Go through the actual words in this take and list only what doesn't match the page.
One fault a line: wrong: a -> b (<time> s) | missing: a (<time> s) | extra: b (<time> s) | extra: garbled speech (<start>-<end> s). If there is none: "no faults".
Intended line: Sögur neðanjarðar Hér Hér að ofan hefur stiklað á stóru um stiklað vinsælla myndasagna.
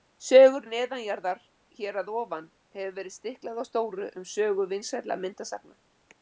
missing: Hér (2.0 s)
extra: verið (3.0 s)
wrong: stiklað -> sögu (4.4 s)